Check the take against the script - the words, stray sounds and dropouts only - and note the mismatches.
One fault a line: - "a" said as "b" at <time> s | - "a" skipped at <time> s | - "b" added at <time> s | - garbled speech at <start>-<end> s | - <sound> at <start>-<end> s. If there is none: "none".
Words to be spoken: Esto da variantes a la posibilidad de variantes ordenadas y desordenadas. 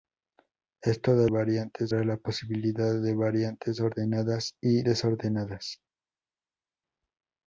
none